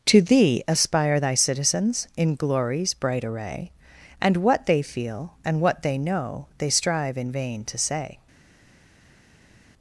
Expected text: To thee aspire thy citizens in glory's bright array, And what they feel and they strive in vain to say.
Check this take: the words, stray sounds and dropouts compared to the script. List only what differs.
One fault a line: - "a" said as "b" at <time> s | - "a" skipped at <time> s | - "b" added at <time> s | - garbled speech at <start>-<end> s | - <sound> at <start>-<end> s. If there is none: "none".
- "what they know" added at 5.6 s